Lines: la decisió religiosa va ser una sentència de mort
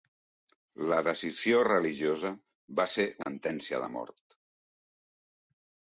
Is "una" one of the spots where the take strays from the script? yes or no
yes